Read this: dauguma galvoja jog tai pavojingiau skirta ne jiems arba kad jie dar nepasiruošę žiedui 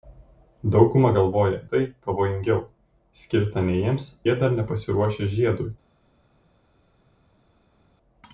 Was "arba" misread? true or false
true